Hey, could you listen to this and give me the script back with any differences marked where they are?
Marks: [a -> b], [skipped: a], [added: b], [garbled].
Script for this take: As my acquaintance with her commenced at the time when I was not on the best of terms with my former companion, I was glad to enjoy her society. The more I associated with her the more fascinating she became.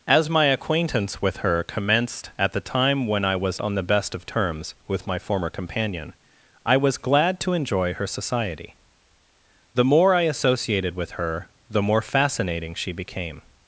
As my acquaintance with her commenced at the time when I was [skipped: not] on the best of terms with my former companion, I was glad to enjoy her society. The more I associated with her the more fascinating she became.